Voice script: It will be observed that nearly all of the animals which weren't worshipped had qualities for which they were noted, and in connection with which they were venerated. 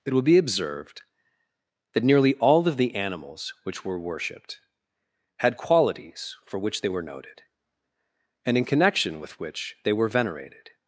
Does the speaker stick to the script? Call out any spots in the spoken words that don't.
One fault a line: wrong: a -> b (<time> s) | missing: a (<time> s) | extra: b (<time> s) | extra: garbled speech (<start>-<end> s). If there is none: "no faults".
wrong: weren't -> were (3.9 s)